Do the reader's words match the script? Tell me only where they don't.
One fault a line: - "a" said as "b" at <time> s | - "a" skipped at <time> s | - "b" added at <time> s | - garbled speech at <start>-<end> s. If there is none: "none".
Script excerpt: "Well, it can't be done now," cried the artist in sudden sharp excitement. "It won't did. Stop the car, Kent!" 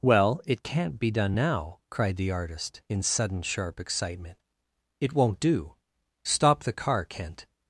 - "did" said as "do" at 5.4 s